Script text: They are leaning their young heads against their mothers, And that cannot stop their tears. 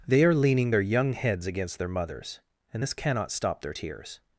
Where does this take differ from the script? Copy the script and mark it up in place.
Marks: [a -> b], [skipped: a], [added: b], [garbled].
They are leaning their young heads against their mothers, And [that -> this] cannot stop their tears.